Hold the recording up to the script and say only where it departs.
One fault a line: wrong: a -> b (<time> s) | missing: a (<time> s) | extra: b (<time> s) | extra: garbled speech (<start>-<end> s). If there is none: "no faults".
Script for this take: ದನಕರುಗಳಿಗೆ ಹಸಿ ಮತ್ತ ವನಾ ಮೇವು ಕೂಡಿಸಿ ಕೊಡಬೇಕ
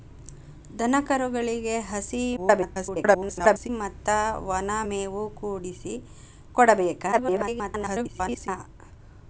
extra: garbled speech (2.4-3.7 s)
extra: garbled speech (7.1-8.5 s)